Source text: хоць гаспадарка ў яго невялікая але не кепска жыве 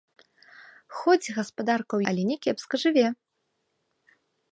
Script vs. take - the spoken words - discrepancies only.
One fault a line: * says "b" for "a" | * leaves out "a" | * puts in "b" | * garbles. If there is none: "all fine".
* leaves out "яго невялікая"